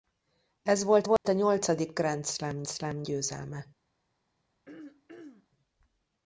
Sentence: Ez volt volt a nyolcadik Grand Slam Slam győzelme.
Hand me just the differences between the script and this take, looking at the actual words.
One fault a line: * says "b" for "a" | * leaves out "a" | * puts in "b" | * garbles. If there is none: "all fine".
all fine